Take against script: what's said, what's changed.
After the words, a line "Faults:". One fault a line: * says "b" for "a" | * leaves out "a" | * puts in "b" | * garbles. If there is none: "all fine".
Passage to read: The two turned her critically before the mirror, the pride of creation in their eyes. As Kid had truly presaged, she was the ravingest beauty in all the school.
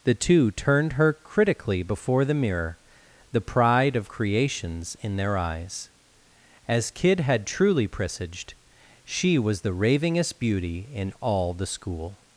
The two turned her critically before the mirror, the pride of creations in their eyes. As Kid had truly presaged, she was the ravingest beauty in all the school.
Faults:
* says "creations" for "creation"